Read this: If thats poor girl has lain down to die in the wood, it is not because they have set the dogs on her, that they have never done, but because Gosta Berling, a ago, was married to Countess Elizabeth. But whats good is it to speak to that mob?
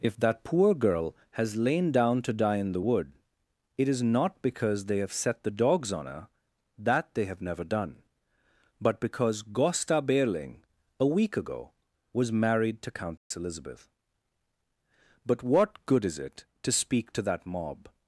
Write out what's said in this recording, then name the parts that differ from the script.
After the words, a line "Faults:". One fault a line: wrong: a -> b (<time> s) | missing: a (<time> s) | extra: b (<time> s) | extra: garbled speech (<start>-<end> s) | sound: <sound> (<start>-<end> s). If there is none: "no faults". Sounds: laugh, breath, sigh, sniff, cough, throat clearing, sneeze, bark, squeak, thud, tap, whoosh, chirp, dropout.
If that poor girl has lain down to die in the wood, it is not because they have set the dogs on her, that they have never done, but because Gosta Berling, a week ago, was married to Countess Elizabeth. But what good is it to speak to that mob?
Faults:
wrong: thats -> that (0.2 s)
extra: week (11.1 s)
sound: dropout (13.2-13.3 s)
wrong: whats -> what (15.4 s)